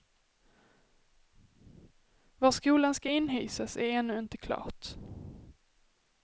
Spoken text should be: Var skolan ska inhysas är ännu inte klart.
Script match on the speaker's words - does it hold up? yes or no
yes